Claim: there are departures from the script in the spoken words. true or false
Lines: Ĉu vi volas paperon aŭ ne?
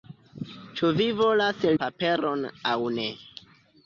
false